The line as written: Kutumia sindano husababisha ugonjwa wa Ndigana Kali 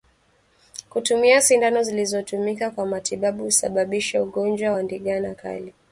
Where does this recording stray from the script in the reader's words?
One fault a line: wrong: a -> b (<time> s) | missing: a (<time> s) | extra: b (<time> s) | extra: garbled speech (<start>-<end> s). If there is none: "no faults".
extra: zilizotumika kwa matibabu (1.8 s)